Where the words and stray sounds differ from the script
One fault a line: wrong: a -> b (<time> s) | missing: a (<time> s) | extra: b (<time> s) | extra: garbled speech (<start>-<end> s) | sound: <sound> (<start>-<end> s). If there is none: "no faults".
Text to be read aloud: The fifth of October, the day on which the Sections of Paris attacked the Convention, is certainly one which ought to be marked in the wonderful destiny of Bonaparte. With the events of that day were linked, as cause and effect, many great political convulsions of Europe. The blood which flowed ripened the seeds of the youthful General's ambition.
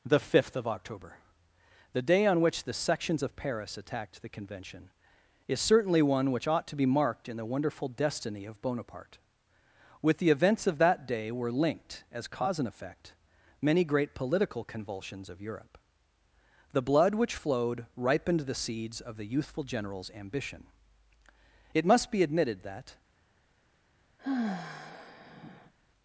extra: It must be admitted that (21.7 s)
sound: sigh (24.2-25.7 s)